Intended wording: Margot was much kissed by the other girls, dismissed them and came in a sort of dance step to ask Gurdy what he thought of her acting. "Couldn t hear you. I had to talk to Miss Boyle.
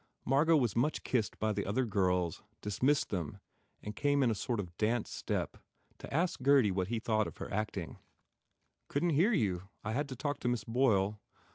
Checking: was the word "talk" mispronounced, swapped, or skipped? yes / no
no